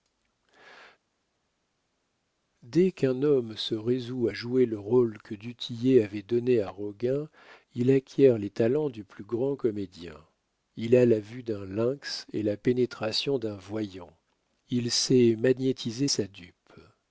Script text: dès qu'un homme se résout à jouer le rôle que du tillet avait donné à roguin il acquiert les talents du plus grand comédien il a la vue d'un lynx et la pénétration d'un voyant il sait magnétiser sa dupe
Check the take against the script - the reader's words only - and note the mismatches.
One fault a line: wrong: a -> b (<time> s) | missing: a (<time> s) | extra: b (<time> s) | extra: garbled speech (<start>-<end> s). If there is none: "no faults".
no faults